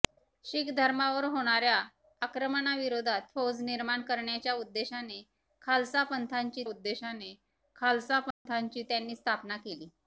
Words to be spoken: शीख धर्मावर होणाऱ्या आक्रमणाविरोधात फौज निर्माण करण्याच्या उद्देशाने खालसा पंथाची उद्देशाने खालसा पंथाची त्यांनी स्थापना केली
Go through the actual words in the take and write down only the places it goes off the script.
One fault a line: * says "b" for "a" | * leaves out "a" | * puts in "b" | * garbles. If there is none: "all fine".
all fine